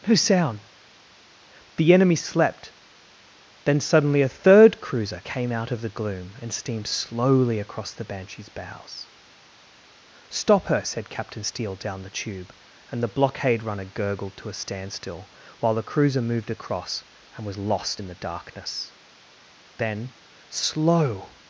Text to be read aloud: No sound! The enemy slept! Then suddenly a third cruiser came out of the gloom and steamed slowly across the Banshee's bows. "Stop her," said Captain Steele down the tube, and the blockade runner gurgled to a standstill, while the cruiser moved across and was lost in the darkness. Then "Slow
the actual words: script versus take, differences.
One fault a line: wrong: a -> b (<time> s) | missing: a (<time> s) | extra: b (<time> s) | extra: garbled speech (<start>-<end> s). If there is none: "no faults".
no faults